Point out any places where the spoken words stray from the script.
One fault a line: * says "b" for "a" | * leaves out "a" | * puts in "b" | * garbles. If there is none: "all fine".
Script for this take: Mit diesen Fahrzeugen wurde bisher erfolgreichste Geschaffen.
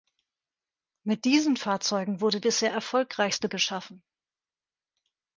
all fine